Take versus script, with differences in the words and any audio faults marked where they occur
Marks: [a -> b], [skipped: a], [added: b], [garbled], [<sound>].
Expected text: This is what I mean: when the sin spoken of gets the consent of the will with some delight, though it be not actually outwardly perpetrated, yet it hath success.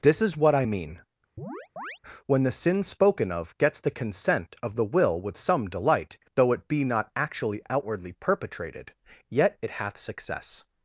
This is what I mean: [chirp] when the sin spoken of gets the consent of the will with some delight, though it be not actually outwardly perpetrated, yet it hath success.